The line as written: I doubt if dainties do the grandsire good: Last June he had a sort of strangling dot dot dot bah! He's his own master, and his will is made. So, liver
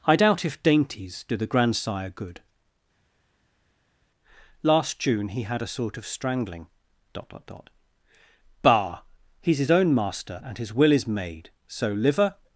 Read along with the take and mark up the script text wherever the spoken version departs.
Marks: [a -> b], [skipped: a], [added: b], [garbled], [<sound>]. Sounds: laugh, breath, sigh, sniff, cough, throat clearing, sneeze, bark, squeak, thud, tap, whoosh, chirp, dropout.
I doubt if dainties do the grandsire good: Last June he had a sort of strangling dot dot dot bah! He's his own master, and his will is made. So, liver